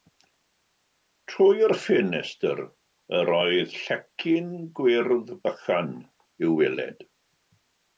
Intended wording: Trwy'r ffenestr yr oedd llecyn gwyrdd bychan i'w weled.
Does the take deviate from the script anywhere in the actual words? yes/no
no